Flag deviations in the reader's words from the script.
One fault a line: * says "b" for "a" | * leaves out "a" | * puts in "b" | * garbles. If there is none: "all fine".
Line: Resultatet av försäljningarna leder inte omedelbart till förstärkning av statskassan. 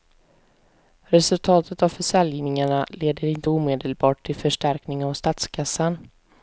all fine